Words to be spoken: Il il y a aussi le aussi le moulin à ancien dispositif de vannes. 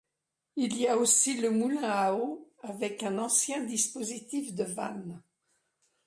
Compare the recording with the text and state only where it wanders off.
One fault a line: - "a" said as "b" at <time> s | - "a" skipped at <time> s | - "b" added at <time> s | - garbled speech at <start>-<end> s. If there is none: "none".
- "il" skipped at 0.8 s
- "aussi le moulin à" said as "moulin à eau avec un" at 1.5 s